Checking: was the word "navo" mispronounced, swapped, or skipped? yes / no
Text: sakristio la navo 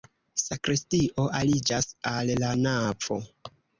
no